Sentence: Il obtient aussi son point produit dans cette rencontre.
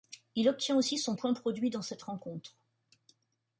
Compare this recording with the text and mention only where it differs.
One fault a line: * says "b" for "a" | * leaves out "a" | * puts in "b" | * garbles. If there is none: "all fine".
all fine